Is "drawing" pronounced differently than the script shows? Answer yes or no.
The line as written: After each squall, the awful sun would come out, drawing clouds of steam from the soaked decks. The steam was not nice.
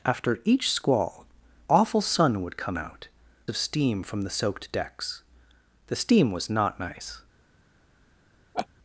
yes